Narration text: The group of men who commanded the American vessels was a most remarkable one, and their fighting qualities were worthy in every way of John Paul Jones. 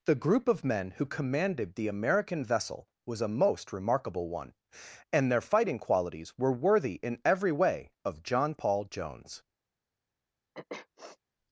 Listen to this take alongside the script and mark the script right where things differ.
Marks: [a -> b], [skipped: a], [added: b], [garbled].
The group of men who commanded the American [vessels -> vessel] was a most remarkable one, and their fighting qualities were worthy in every way of John Paul Jones.